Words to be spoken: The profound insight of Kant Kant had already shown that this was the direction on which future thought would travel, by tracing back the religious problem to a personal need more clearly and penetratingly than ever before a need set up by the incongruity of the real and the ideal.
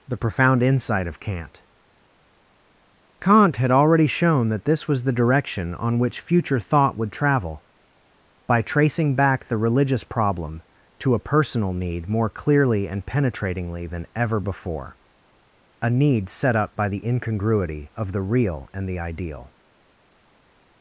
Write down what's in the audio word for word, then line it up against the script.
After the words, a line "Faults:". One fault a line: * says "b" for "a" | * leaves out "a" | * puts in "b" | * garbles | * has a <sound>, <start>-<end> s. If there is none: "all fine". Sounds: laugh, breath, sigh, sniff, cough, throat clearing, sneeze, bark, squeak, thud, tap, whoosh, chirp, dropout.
The profound insight of Kant Kant had already shown that this was the direction on which future thought would travel, by tracing back the religious problem to a personal need more clearly and penetratingly than ever before a need set up by the incongruity of the real and the ideal.
Faults:
all fine